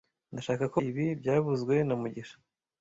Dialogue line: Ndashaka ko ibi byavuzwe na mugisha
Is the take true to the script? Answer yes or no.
yes